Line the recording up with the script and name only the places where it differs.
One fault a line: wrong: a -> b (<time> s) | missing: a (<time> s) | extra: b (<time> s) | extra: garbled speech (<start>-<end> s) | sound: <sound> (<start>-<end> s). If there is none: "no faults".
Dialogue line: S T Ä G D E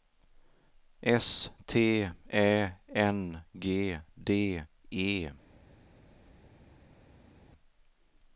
extra: N (2.9 s)